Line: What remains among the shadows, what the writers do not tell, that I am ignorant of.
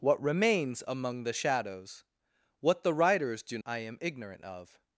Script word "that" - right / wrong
wrong